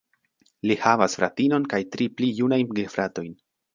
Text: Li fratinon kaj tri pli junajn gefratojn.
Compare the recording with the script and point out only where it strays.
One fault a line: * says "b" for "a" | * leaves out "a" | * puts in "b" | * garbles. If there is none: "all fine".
* puts in "havas"